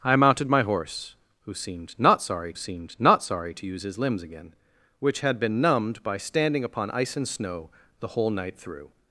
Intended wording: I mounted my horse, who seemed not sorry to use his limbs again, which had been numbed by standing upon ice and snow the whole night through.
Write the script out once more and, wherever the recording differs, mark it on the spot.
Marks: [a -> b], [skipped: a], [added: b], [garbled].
I mounted my horse, who seemed not sorry [added: seemed not sorry] to use his limbs again, which had been numbed by standing upon ice and snow the whole night through.